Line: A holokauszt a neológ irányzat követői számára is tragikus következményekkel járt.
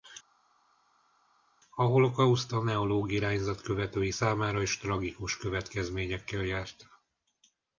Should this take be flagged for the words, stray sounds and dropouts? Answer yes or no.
no